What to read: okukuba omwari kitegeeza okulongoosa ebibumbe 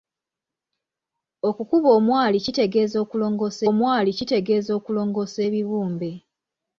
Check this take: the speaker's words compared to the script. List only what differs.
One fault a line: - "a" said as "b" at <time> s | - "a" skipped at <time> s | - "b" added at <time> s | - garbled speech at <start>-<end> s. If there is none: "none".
- "omwari kitegeeza okulongoosa" added at 3.7 s